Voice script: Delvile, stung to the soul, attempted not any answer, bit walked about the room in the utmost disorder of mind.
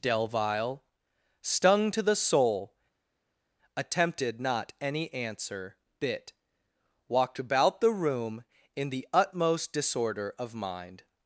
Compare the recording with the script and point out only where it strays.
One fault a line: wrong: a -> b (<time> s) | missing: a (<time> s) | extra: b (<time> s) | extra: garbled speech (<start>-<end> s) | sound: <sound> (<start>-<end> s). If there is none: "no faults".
no faults